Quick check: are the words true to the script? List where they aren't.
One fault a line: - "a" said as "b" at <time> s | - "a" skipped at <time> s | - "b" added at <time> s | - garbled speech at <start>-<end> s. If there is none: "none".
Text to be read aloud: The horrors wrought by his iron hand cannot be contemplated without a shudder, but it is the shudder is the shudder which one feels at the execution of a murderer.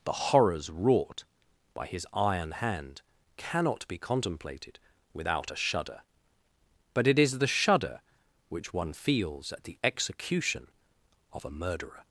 - "is the shudder" skipped at 8.0 s